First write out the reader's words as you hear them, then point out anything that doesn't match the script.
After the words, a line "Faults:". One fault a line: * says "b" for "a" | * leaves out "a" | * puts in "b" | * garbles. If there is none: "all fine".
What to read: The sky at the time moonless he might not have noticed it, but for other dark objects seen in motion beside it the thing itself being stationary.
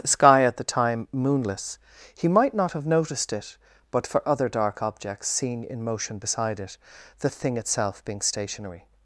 The sky at the time moonless he might not have noticed it, but for other dark objects seen in motion beside it the thing itself being stationary.
Faults:
all fine